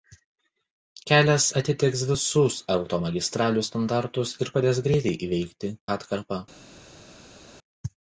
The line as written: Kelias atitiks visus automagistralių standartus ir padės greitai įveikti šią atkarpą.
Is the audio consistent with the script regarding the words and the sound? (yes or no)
no